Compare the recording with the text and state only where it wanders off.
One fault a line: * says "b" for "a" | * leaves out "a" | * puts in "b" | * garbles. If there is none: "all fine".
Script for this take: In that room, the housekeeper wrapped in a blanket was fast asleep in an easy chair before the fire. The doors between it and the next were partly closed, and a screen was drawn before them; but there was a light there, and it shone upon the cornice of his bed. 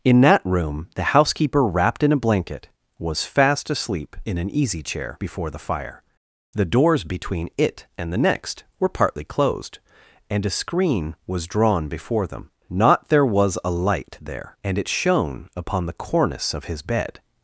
* says "not" for "but"